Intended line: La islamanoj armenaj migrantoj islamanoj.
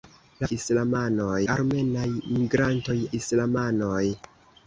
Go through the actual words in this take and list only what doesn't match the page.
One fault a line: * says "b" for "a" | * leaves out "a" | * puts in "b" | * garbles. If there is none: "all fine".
all fine